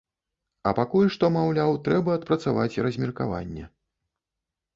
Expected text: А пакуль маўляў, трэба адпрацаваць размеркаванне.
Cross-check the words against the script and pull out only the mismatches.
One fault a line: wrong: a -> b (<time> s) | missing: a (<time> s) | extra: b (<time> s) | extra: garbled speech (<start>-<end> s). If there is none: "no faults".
extra: што (1.2 s)